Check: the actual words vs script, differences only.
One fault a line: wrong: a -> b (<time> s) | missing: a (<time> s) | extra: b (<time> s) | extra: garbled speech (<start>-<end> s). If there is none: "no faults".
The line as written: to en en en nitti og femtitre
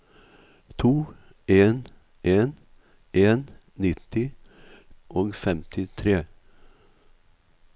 no faults